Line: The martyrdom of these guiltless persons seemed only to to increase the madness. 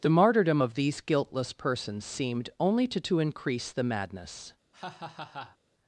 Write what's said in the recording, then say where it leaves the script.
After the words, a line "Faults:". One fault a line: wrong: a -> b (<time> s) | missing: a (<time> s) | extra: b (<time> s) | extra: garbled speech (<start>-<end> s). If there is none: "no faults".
The martyrdom of these guiltless persons seemed only to to increase the madness.
Faults:
no faults